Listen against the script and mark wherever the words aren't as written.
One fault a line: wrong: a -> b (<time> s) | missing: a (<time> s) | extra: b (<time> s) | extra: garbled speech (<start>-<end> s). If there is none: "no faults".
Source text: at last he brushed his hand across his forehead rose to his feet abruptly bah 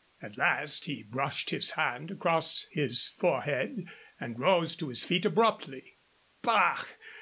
extra: and (4.2 s)